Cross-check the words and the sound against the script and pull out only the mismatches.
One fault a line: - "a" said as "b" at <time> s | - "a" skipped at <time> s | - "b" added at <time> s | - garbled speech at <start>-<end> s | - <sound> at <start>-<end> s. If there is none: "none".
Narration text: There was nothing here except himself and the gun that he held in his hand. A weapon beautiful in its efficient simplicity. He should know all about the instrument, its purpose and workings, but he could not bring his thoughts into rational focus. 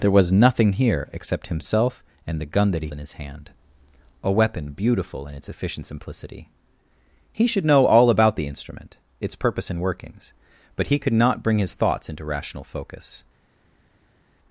- "held" skipped at 2.9 s